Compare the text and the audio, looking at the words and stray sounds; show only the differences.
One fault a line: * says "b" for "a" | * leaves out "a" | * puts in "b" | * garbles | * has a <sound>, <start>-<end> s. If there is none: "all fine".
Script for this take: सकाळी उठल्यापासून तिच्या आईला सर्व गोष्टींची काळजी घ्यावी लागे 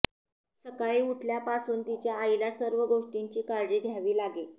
all fine